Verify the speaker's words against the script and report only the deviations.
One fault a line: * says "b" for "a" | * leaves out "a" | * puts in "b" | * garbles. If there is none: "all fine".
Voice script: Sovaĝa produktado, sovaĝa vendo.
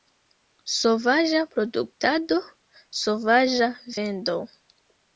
all fine